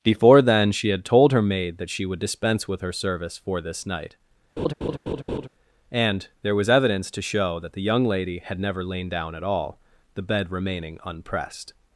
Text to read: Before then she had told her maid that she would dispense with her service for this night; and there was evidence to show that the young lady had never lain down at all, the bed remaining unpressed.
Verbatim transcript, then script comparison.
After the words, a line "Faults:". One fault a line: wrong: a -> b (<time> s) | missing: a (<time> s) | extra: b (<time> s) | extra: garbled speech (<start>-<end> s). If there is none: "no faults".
Before then she had told her maid that she would dispense with her service for this night; and there was evidence to show that the young lady had never lain down at all, the bed remaining unpressed.
Faults:
no faults